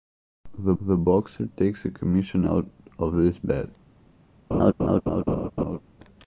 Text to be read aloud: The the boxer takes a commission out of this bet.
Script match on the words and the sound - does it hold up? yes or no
no